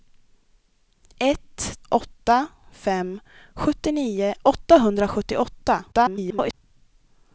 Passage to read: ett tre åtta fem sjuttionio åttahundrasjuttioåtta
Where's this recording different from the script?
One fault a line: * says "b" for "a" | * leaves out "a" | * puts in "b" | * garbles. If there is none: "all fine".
* leaves out "tre"
* garbles